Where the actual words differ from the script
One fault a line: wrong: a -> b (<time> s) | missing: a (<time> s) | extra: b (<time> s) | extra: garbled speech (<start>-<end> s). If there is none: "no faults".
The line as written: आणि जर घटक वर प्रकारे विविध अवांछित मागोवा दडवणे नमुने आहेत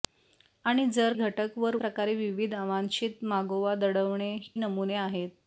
no faults